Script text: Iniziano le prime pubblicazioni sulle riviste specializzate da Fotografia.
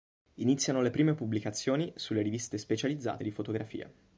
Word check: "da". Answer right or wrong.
wrong